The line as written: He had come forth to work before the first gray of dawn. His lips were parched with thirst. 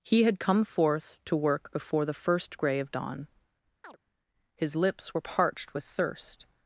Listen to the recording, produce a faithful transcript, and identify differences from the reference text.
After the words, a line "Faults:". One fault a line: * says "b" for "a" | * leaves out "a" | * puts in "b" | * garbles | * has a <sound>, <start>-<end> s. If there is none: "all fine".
He had come forth to work before the first gray of dawn. His lips were parched with thirst.
Faults:
* has a chirp, 3.8-4.0 s